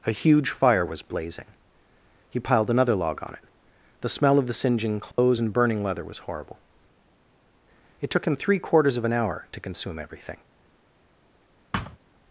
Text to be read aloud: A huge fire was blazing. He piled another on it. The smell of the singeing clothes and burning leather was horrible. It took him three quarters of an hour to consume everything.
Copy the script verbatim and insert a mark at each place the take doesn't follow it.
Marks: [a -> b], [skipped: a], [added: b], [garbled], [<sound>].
A huge fire was blazing. He piled another [added: log] on it. The smell of the singeing clothes [dropout] and burning leather was horrible. It took him three quarters of an hour to consume everything. [thud]